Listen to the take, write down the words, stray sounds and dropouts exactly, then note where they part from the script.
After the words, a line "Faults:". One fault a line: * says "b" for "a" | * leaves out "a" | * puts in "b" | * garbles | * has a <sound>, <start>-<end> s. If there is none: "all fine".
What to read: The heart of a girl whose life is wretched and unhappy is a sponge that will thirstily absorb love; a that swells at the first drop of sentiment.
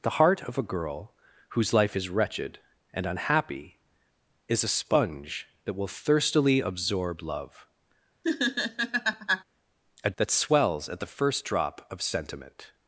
The heart of a girl whose life is wretched and unhappy is a sponge that will thirstily absorb love; a that swells at the first drop of sentiment.
Faults:
* has a laugh, 8.2-9.4 s